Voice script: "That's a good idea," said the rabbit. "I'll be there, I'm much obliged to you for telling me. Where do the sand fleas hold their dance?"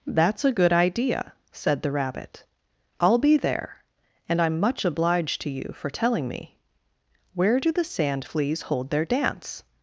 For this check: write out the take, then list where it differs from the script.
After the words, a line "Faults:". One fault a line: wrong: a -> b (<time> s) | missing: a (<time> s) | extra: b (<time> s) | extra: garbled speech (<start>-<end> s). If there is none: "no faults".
"That's a good idea," said the rabbit. "I'll be there, and I'm much obliged to you for telling me. Where do the sand fleas hold their dance?"
Faults:
extra: and (4.3 s)